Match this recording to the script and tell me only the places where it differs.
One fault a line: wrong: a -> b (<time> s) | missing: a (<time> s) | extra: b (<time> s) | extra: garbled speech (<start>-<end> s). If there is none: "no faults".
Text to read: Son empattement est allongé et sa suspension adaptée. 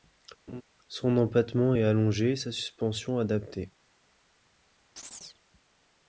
no faults